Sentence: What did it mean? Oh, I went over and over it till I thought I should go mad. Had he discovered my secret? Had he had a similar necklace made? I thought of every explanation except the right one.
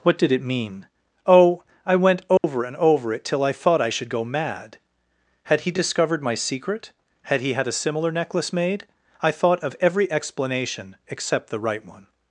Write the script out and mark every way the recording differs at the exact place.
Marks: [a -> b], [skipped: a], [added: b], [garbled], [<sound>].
What did it mean? Oh, I went over [dropout] and over it till I thought I should go mad. Had he discovered my secret? Had he had a similar necklace made? I thought of every explanation except the right one.